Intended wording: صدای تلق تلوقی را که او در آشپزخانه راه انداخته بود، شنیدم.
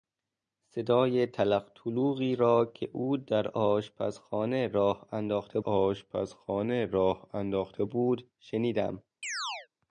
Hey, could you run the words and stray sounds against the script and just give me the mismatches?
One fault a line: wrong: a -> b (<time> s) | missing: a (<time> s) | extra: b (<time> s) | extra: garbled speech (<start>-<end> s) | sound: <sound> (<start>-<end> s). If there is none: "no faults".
extra: آشپزخانه راه انداخته (5.6 s)
sound: chirp (9.2-9.7 s)